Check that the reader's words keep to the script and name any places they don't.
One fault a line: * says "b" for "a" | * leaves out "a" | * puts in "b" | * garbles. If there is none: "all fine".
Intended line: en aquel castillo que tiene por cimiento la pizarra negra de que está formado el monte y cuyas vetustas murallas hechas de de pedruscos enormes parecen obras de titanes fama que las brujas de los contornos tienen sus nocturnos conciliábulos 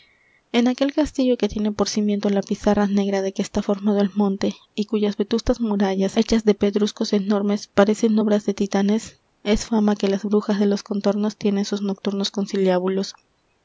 * leaves out "de"
* puts in "es"